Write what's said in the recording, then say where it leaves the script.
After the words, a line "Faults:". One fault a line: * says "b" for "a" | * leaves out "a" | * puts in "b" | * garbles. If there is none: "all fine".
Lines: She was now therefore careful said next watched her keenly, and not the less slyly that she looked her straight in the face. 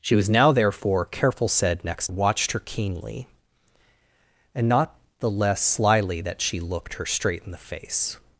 She was now therefore careful said next watched her keenly, and not the less slyly that she looked her straight in the face.
Faults:
all fine